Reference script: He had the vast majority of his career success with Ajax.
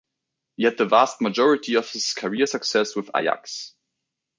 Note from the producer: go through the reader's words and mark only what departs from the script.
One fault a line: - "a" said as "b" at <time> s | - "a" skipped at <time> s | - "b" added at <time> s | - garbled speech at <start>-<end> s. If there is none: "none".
none